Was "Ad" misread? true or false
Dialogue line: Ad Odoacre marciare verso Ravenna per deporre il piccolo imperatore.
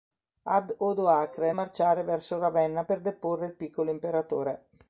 false